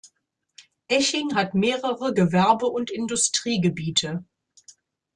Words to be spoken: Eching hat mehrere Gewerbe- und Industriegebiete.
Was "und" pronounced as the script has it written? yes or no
yes